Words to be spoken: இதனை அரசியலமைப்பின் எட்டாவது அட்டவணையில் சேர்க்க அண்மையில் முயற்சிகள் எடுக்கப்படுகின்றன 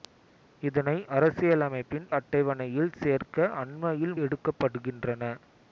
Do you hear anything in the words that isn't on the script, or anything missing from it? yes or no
yes